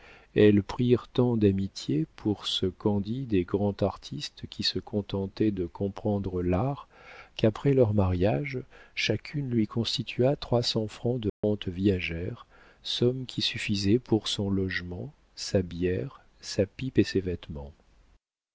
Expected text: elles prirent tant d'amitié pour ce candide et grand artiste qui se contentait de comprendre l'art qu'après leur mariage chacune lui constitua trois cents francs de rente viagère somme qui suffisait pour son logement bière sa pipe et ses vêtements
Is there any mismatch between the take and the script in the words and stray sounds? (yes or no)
yes